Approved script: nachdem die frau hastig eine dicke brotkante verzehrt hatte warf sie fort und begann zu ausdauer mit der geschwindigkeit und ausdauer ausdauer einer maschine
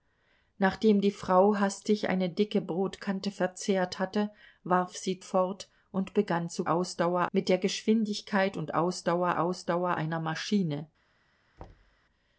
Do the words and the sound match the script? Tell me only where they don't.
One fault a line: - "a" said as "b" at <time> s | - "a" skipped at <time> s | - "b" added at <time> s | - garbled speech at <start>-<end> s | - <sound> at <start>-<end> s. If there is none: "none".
- thud at 11.6-12.0 s